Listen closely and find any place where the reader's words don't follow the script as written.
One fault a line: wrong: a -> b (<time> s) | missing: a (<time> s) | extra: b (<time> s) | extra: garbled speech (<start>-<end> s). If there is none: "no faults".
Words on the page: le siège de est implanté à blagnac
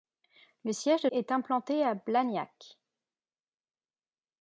no faults